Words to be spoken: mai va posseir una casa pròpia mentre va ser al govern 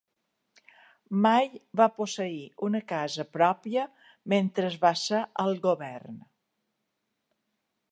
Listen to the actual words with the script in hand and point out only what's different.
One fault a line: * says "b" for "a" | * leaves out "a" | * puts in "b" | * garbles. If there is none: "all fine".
all fine